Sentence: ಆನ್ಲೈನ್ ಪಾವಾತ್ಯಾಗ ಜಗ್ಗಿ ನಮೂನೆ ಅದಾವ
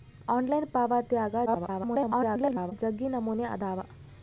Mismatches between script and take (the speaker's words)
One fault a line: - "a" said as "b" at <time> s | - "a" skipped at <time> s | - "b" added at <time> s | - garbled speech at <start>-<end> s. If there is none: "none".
- garbled speech at 1.5-2.7 s